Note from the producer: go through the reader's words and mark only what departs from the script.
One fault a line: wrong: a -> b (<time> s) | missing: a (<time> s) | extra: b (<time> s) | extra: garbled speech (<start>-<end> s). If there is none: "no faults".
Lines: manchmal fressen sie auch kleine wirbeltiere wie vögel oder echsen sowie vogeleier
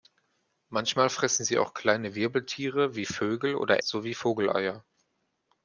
missing: echsen (3.8 s)